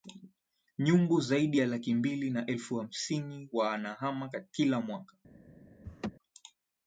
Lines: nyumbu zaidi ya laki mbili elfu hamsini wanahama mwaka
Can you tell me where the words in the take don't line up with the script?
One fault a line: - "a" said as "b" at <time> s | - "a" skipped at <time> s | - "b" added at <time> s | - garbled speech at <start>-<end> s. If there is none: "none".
- "na" added at 2.3 s
- "kila" added at 4.5 s